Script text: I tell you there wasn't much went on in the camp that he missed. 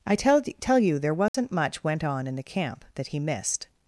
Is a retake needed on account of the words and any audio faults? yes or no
yes